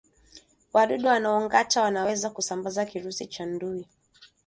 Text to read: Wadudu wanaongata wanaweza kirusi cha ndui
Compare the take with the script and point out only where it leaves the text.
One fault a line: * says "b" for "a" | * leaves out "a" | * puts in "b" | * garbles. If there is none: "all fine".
* puts in "kusambaza"